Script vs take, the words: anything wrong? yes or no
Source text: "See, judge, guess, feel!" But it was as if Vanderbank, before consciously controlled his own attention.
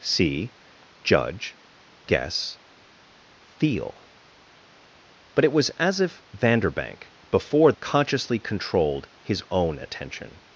no